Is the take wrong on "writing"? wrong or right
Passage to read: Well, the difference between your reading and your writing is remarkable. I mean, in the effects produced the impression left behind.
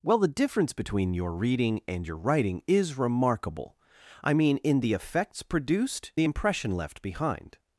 right